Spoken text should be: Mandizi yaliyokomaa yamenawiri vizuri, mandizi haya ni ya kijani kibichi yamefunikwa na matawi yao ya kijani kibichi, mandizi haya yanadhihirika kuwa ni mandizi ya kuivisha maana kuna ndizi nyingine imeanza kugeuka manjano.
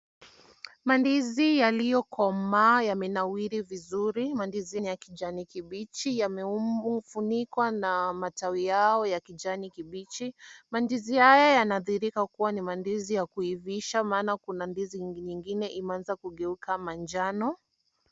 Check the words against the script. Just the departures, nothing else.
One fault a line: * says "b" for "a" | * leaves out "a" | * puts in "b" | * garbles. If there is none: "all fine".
* leaves out "haya"